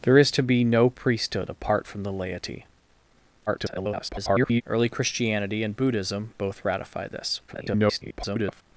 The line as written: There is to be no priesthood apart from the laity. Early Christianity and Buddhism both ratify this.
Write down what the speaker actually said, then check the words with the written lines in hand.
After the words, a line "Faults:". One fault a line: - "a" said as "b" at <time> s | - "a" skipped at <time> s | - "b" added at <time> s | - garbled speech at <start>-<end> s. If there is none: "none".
There is to be no priesthood apart from the laity. [garbled] Early Christianity and Buddhism both ratify this. [garbled]
Faults:
- garbled speech at 3.5-4.6 s
- garbled speech at 7.5-8.6 s